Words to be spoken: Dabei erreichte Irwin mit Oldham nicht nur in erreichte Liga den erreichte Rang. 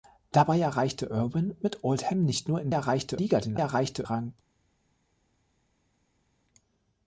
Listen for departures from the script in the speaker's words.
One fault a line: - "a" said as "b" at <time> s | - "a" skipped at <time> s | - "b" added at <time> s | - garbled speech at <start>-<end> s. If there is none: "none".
none